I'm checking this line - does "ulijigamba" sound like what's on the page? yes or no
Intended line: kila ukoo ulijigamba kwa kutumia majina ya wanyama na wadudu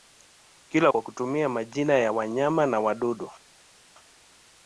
no